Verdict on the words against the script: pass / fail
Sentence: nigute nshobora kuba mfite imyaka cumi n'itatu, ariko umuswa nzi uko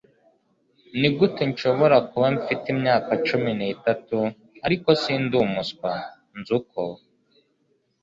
fail